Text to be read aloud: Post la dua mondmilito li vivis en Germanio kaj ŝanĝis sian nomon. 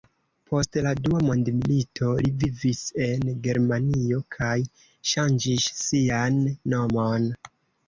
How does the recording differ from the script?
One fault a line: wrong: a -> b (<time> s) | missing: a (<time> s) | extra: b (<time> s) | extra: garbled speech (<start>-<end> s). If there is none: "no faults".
no faults